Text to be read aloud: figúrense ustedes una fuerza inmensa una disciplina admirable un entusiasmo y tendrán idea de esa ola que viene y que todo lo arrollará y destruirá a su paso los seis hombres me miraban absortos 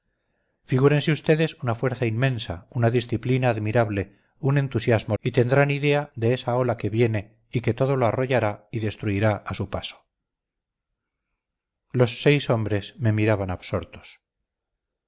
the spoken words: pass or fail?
pass